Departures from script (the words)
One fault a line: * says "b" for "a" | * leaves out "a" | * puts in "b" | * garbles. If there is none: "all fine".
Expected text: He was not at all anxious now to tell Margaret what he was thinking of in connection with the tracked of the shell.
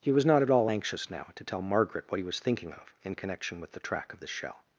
* says "track" for "tracked"